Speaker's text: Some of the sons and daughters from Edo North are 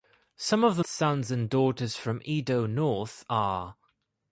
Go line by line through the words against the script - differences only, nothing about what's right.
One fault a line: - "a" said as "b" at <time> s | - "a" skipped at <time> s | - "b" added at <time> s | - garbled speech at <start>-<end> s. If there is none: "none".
none